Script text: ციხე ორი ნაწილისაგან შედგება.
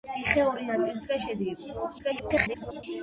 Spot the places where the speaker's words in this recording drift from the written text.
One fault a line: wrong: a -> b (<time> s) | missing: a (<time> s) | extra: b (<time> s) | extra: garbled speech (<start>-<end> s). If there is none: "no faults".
extra: garbled speech (2.0-2.8 s)